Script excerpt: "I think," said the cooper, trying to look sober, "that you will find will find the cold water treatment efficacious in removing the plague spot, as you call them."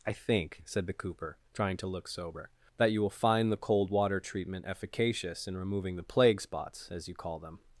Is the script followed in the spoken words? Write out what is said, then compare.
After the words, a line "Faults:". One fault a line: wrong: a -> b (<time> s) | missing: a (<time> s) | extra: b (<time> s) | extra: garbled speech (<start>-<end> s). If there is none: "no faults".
"I think," said the cooper, trying to look sober, "that you will find the cold water treatment efficacious in removing the plague spots, as you call them."
Faults:
missing: will find (3.5 s)
wrong: spot -> spots (6.4 s)